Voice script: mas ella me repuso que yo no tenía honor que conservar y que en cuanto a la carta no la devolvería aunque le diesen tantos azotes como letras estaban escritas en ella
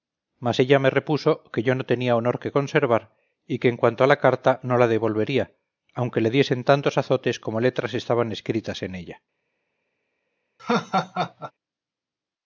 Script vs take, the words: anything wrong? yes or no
no